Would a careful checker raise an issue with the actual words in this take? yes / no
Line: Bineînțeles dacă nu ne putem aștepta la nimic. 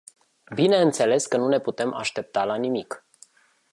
yes